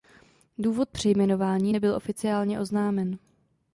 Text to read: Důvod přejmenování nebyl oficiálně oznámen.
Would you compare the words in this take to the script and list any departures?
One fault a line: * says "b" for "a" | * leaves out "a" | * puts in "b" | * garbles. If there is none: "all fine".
all fine